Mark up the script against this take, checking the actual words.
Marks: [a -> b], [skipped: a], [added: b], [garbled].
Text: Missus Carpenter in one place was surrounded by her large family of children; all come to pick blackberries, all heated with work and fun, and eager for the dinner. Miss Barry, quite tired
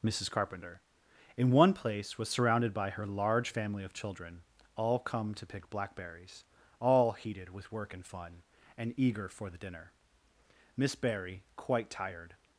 Missus Carpenter in one place was surrounded by her large family of children; all come to pick blackberries, all heated with work and fun, and eager for the dinner. Miss Barry, quite tired